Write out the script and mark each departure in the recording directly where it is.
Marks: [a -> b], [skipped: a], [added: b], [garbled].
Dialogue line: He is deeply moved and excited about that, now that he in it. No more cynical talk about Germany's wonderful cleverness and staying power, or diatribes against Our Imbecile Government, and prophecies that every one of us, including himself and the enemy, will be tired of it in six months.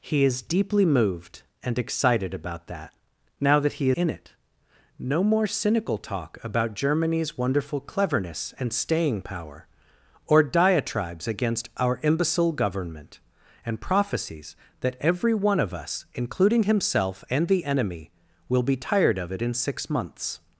He is deeply moved and excited about that, now that he in it. No more cynical talk about Germany's wonderful cleverness and staying power, or diatribes against Our Imbecile Government, and prophecies that every one of us, including himself and the enemy, will be tired of it in six months.